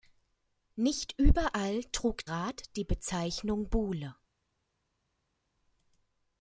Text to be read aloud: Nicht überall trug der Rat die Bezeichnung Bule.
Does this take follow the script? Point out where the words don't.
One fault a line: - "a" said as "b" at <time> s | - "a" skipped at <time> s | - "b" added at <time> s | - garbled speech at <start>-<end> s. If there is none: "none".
- "der" skipped at 2.3 s